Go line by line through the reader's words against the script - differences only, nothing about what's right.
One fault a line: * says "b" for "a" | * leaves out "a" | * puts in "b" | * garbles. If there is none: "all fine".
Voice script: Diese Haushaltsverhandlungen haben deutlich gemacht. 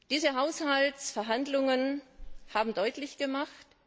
all fine